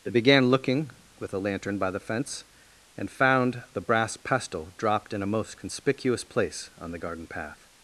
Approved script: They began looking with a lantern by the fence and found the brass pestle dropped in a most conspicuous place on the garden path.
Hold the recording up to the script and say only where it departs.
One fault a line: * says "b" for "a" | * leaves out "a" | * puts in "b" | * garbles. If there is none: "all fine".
all fine